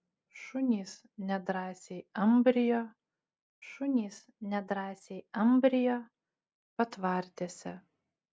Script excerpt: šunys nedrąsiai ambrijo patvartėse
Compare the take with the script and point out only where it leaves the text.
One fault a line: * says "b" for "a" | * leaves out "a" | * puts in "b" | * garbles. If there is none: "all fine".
* puts in "šunys nedrąsiai ambrijo"